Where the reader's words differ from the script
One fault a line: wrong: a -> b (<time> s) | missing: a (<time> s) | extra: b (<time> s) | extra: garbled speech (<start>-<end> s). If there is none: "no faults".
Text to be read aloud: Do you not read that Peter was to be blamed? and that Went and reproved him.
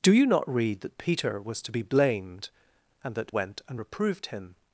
no faults